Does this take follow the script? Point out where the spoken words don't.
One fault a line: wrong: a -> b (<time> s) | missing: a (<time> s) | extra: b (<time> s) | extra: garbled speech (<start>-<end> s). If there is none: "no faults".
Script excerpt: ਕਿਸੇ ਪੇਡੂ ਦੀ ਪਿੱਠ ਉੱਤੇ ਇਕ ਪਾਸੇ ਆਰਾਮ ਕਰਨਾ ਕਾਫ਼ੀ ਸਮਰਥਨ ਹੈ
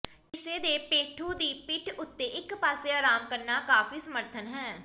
extra: ਦੇ (0.6 s)